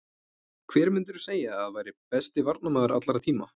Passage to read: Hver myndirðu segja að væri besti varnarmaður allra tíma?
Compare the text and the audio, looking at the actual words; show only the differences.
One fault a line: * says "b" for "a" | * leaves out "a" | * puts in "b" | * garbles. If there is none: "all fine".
all fine